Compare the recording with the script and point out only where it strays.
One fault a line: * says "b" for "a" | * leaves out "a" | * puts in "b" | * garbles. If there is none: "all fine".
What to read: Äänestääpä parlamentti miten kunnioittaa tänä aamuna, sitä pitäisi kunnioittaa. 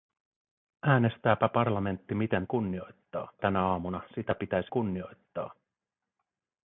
all fine